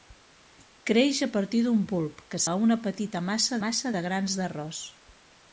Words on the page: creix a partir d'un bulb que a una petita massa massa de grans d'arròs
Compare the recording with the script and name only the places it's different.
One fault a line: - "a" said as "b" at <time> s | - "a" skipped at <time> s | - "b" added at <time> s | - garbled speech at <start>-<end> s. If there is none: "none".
none